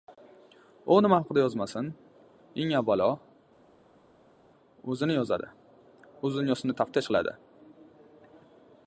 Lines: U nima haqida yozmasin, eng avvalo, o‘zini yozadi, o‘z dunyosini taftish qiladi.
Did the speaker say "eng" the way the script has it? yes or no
yes